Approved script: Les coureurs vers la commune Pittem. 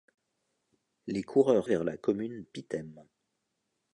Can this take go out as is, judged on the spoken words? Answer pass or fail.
pass